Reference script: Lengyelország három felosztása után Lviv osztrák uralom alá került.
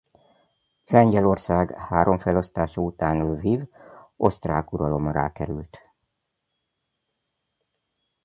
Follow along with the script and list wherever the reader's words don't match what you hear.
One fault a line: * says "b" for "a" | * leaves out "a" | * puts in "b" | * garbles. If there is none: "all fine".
all fine